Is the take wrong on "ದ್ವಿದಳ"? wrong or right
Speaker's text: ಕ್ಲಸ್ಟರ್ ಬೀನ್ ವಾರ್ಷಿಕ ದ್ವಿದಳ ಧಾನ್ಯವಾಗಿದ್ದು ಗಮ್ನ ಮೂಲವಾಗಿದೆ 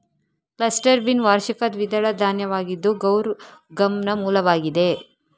right